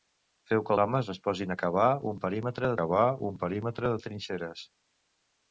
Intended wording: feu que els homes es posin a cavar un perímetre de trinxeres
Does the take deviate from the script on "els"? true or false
true